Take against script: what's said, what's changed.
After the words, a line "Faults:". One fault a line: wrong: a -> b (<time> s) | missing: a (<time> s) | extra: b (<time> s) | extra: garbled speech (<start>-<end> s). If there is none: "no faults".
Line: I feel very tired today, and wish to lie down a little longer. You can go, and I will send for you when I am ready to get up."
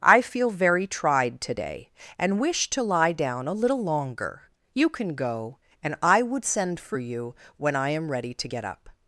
I feel very tried today, and wish to lie down a little longer. You can go, and I would send for you when I am ready to get up."
Faults:
wrong: tired -> tried (0.9 s)
wrong: will -> would (6.2 s)